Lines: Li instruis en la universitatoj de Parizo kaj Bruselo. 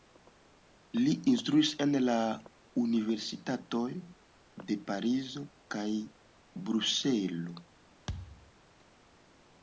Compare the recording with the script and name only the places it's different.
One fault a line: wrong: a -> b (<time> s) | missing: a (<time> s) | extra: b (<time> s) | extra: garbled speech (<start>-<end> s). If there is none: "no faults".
no faults